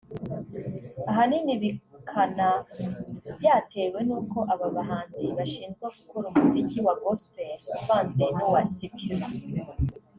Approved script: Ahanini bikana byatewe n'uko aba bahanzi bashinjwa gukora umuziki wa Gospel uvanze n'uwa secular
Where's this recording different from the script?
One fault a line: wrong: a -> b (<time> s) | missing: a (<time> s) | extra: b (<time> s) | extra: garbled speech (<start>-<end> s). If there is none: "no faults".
no faults